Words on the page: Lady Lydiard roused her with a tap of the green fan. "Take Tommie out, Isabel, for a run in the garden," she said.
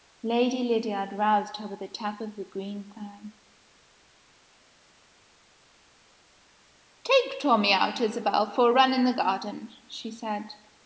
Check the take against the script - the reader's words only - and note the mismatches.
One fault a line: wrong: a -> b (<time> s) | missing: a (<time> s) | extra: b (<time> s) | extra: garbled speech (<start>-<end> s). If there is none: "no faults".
no faults